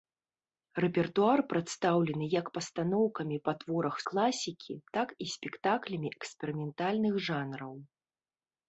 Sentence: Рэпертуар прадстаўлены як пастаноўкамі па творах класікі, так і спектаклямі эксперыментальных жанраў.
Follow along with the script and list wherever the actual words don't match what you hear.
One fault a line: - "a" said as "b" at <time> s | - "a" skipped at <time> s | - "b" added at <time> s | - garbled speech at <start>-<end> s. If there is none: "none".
none